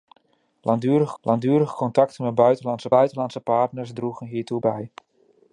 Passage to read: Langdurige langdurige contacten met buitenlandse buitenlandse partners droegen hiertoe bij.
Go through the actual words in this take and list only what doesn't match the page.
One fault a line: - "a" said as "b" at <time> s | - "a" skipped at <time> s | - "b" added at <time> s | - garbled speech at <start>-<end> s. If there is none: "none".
none